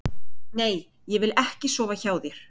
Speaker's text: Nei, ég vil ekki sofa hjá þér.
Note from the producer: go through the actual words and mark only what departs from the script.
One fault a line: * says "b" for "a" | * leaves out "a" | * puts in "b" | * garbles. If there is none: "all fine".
all fine